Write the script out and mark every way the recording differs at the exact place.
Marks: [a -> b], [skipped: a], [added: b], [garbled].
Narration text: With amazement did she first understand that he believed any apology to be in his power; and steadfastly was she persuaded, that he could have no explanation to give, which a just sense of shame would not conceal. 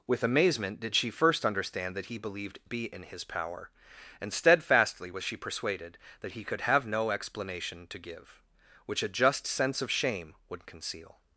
With amazement did she first understand that he believed [skipped: any apology to] be in his power; and steadfastly was she persuaded, that he could have no explanation to give, which a just sense of shame would [skipped: not] conceal.